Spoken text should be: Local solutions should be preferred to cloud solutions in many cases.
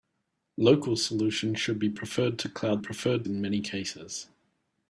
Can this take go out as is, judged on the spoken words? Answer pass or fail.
fail